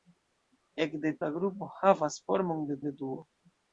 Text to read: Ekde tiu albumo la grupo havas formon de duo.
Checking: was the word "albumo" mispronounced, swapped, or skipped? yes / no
yes